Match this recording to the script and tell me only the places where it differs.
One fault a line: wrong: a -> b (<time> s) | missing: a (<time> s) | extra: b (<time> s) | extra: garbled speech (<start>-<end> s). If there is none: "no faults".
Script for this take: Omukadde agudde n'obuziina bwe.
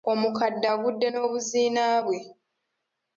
no faults